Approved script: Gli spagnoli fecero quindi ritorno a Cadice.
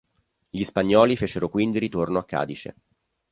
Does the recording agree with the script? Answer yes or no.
yes